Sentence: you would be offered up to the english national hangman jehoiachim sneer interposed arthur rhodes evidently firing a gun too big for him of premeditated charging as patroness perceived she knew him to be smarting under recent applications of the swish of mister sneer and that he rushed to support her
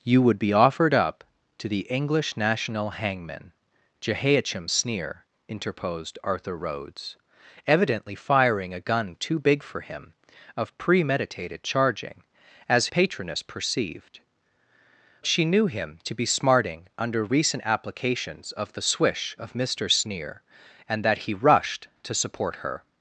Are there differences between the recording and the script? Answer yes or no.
no